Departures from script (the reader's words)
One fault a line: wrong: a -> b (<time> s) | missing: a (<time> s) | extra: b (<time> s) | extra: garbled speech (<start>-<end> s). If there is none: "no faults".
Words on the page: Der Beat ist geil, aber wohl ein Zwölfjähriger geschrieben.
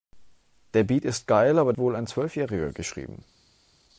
no faults